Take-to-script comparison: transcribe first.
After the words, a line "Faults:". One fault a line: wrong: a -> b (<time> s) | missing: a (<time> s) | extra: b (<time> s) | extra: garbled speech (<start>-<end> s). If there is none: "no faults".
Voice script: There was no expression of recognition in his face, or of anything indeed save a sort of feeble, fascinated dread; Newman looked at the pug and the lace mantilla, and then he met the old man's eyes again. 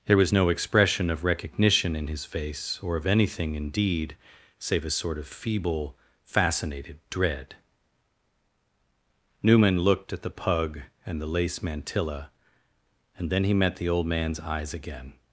There was no expression of recognition in his face, or of anything indeed save a sort of feeble, fascinated dread; Newman looked at the pug and the lace mantilla, and then he met the old man's eyes again.
Faults:
no faults